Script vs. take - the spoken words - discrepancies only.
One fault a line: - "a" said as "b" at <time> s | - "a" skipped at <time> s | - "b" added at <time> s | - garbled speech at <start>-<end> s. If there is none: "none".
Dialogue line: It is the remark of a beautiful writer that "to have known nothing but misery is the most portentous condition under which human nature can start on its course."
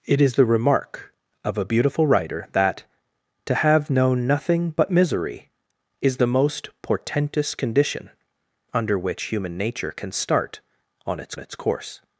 - "its" added at 11.4 s